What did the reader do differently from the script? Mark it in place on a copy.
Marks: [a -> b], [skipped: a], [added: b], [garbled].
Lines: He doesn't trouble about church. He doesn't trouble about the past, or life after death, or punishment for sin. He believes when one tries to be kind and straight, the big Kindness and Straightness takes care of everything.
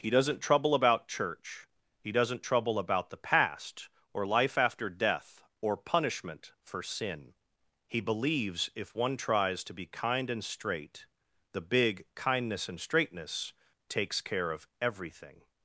He doesn't trouble about church. He doesn't trouble about the past, or life after death, or punishment for sin. He believes [when -> if] one tries to be kind and straight, the big Kindness and Straightness takes care of everything.